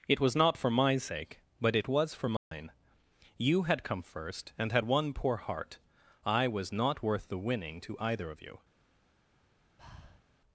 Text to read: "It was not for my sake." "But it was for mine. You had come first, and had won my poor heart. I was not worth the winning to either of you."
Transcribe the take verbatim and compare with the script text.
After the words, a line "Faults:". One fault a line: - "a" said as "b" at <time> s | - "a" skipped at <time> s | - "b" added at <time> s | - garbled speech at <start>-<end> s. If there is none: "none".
"It was not for my sake." "But it was for mine. You had come first, and had won poor heart. I was not worth the winning to either of you."
Faults:
- "my" skipped at 5.1 s